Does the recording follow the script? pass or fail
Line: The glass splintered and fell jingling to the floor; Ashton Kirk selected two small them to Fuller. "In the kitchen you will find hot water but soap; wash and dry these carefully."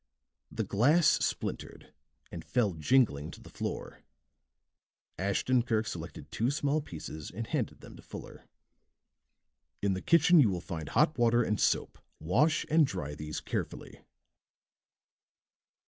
fail